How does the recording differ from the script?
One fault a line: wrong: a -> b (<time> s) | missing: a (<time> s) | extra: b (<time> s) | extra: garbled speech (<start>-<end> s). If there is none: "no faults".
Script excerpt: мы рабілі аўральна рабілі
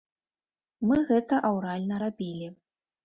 wrong: рабілі -> гэта (1.1 s)